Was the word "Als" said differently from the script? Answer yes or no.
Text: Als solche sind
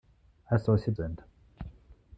no